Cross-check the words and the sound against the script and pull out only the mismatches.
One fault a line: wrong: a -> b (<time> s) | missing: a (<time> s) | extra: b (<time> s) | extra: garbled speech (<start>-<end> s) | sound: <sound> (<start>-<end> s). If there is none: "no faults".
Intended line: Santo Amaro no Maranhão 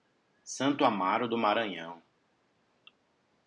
wrong: no -> do (1.3 s)